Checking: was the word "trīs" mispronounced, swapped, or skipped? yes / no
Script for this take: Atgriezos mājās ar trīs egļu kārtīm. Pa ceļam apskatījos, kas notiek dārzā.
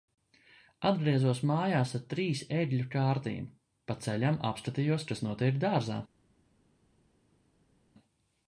no